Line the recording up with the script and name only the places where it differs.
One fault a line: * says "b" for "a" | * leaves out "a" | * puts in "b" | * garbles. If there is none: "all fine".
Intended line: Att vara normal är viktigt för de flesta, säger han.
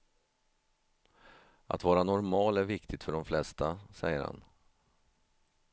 all fine